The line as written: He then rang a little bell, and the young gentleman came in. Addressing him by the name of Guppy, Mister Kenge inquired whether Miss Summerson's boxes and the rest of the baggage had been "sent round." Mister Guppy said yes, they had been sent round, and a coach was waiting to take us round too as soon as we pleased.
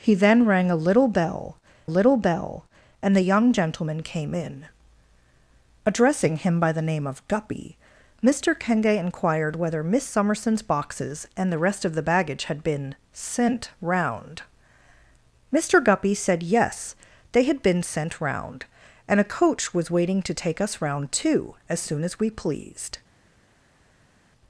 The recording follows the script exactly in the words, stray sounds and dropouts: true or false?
false